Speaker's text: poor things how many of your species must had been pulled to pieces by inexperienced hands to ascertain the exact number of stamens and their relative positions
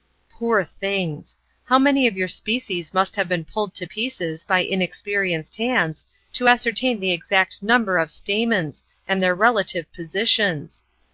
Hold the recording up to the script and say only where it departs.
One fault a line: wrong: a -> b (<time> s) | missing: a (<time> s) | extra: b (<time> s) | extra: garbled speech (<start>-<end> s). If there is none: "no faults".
wrong: had -> have (3.2 s)